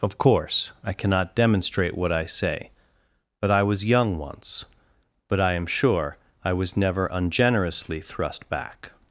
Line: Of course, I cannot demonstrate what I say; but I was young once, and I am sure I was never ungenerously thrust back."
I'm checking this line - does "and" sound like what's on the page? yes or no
no